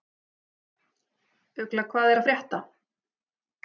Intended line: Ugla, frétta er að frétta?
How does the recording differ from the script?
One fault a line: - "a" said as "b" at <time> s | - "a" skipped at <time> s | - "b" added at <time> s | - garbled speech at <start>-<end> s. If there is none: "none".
- "frétta" said as "hvað" at 1.9 s